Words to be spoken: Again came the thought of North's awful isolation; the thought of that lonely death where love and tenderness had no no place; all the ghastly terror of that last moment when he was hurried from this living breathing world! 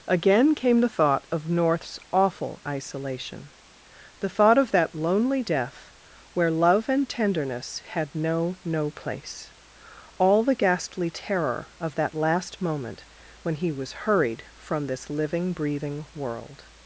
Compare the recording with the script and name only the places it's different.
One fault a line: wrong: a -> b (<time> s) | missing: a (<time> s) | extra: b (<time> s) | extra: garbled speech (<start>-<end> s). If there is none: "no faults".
no faults